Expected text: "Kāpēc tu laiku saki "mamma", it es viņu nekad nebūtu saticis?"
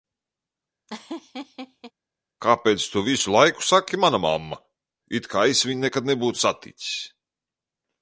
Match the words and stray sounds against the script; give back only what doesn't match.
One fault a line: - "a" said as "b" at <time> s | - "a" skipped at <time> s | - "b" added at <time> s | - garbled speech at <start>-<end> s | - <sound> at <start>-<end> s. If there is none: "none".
- laugh at 0.9-1.9 s
- "visu" added at 3.1 s
- "mana" added at 4.1 s
- "kā" added at 5.4 s